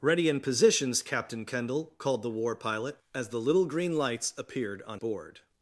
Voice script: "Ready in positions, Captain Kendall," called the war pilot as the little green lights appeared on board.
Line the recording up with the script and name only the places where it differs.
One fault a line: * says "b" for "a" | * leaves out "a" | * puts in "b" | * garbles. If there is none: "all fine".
all fine